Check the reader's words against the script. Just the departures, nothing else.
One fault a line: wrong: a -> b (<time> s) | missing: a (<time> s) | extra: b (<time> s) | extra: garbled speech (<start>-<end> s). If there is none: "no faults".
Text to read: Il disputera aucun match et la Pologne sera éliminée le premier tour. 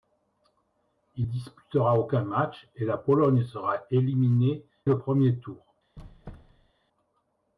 no faults